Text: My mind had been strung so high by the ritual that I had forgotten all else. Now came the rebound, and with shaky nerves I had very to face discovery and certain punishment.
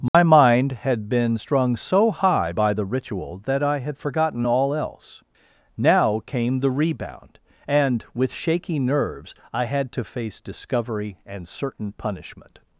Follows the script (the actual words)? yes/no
no